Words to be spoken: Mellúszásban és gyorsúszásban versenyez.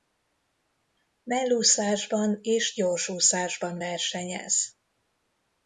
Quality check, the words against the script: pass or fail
pass